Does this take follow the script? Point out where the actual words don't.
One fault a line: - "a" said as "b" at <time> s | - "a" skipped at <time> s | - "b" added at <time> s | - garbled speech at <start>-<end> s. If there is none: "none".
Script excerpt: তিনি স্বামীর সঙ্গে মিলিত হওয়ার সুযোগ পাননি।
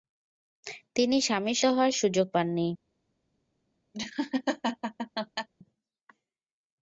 - "সঙ্গে মিলিত" skipped at 1.6 s